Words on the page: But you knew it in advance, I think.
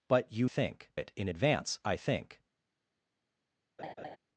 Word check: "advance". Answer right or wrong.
right